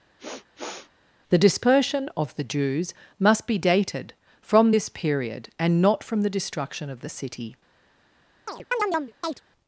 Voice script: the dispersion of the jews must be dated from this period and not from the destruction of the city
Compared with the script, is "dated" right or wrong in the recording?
right